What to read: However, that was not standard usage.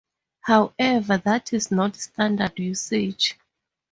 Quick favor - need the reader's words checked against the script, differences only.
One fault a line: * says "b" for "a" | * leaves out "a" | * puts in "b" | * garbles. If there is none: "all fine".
* says "is" for "was"